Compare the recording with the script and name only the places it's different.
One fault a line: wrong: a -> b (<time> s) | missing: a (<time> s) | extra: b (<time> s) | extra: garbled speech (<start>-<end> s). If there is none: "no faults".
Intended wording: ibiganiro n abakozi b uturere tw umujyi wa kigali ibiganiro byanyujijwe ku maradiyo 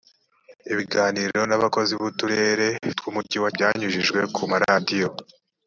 missing: kigali ibiganiro (3.5 s)